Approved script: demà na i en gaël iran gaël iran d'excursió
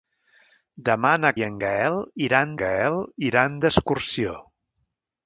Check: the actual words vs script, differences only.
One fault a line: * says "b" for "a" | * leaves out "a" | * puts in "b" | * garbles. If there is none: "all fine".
all fine